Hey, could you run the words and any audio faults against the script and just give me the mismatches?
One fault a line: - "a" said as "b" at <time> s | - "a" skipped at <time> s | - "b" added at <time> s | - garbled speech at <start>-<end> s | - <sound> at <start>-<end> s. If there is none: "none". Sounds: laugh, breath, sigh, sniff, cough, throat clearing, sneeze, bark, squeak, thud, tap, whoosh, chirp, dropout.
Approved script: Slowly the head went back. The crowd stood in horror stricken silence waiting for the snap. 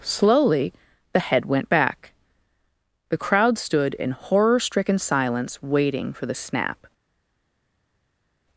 none